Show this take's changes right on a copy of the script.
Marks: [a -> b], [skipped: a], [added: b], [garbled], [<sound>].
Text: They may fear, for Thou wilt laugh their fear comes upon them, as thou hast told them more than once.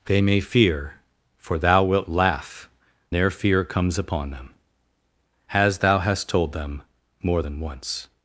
They may fear, for Thou wilt laugh their fear comes upon them, as thou hast told them more than once.